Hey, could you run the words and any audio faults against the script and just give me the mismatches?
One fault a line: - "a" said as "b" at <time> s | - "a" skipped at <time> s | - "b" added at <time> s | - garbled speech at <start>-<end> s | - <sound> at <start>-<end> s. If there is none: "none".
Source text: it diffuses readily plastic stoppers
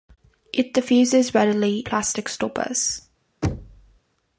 - thud at 3.4-4.0 s